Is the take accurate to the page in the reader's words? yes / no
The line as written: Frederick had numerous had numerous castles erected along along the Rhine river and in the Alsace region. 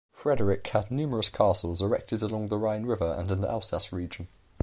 no